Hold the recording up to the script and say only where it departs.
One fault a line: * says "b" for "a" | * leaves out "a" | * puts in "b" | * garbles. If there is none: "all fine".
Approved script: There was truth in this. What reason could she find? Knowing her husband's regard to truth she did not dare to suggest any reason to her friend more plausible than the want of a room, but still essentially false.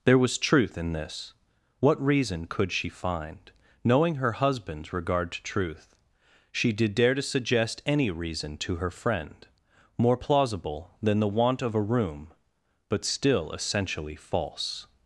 * leaves out "not"